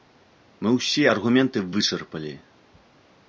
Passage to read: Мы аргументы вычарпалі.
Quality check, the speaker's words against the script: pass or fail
fail